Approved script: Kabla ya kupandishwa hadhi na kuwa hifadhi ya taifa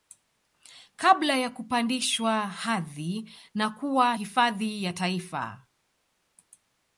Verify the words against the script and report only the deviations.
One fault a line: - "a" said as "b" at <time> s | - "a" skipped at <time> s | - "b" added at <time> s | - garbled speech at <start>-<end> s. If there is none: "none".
none